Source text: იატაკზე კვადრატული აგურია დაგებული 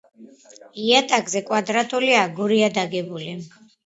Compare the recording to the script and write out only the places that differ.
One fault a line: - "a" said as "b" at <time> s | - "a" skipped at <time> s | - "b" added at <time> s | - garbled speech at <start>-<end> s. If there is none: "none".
none